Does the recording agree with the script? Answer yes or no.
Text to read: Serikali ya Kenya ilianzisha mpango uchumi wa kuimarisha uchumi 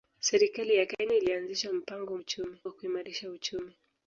yes